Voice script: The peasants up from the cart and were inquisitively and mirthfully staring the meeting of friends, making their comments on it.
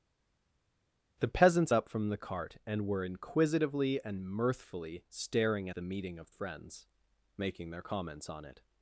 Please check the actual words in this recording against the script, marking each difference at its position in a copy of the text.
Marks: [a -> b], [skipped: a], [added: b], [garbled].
The peasants up from the cart and were inquisitively and mirthfully staring the meeting of friends, making their comments on it.